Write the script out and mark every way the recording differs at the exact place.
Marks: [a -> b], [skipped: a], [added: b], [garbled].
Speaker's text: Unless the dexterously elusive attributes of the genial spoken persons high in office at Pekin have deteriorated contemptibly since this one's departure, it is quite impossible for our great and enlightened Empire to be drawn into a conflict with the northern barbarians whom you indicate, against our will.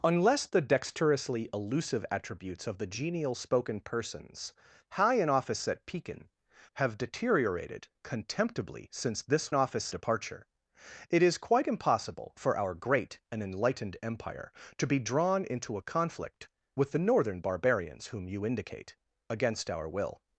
Unless the dexterously elusive attributes of the genial spoken persons high in office at Pekin have deteriorated contemptibly since this [one's -> office] departure, it is quite impossible for our great and enlightened Empire to be drawn into a conflict with the northern barbarians whom you indicate, against our will.